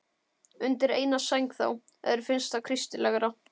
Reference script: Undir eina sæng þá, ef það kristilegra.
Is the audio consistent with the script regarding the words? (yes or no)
no